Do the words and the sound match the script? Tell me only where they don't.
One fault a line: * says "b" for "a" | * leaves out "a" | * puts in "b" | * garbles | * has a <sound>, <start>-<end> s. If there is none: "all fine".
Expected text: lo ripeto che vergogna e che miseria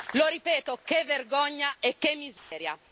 * has a dropout, 2.4-2.5 s